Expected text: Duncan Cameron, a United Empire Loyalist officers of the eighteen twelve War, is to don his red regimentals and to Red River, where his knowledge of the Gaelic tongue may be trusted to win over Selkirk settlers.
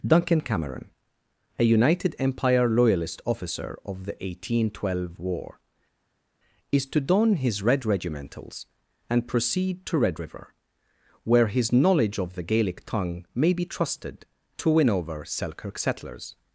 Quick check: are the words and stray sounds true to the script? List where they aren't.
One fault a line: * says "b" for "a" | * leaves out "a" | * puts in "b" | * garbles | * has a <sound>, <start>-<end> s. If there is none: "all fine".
* says "officer" for "officers"
* puts in "proceed"